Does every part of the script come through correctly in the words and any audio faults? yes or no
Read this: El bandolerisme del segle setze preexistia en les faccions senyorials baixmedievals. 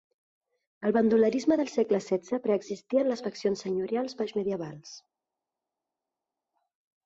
yes